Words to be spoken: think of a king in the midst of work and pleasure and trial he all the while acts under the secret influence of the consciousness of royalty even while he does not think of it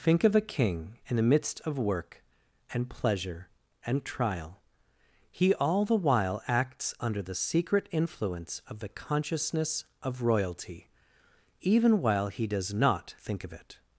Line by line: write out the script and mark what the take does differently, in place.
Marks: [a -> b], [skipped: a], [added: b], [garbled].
think of a king in the midst of work and pleasure and trial he all the while acts under the secret influence of the consciousness of royalty even while he does not think of it